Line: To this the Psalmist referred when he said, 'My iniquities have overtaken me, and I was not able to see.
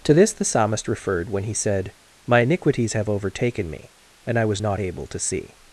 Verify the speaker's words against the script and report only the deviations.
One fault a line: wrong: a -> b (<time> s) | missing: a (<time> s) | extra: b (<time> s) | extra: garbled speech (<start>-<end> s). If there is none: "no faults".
no faults